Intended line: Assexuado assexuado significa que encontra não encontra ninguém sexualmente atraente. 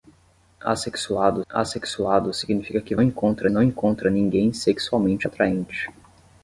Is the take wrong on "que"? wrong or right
right